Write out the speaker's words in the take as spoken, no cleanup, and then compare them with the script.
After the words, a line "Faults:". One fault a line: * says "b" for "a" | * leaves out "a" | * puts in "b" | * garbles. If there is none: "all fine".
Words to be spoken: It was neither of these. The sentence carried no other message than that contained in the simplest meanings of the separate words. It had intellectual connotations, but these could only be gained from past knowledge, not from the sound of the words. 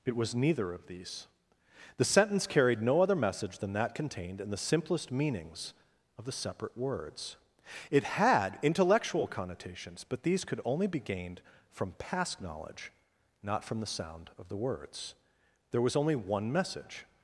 It was neither of these. The sentence carried no other message than that contained in the simplest meanings of the separate words. It had intellectual connotations, but these could only be gained from past knowledge, not from the sound of the words. There was only one message
Faults:
* puts in "There was only one message"